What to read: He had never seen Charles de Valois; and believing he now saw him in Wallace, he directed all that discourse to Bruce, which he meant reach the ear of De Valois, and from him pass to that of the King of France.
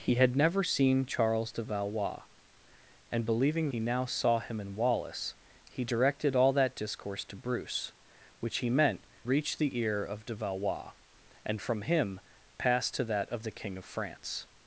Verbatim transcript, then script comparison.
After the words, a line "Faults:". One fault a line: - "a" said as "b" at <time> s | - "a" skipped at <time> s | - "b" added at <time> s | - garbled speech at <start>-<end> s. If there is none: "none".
He had never seen Charles de Valois; and believing he now saw him in Wallace, he directed all that discourse to Bruce, which he meant reach the ear of De Valois, and from him pass to that of the King of France.
Faults:
none